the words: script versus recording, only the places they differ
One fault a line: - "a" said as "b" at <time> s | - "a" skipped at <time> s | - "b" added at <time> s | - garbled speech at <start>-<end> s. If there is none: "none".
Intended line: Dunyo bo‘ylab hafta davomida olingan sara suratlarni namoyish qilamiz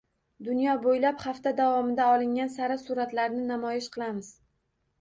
none